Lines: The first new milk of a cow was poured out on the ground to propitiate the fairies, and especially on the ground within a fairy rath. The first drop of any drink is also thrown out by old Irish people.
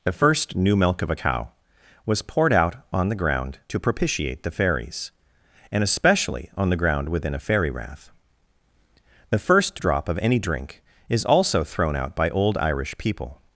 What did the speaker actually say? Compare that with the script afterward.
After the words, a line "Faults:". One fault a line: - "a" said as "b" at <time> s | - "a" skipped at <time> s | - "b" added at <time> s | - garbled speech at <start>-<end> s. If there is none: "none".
The first new milk of a cow was poured out on the ground to propitiate the fairies, and especially on the ground within a fairy rath. The first drop of any drink is also thrown out by old Irish people.
Faults:
none